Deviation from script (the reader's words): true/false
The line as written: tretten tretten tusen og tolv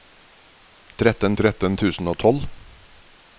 false